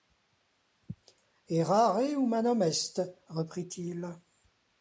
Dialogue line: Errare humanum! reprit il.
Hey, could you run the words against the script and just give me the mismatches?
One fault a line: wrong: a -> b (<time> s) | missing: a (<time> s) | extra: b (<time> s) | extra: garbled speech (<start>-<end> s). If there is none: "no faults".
extra: est (2.6 s)